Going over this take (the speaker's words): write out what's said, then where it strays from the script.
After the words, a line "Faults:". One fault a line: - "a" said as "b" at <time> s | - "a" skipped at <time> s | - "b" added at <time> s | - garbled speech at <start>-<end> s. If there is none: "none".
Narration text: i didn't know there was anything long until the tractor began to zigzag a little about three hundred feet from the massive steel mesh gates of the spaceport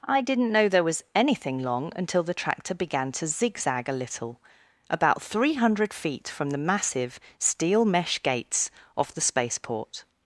i didn't know there was anything long until the tractor began to zigzag a little about three hundred feet from the massive steel mesh gates of the spaceport
Faults:
none